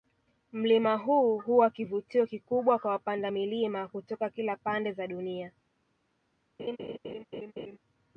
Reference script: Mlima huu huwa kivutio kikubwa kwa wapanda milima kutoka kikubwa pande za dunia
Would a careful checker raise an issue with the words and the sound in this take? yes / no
yes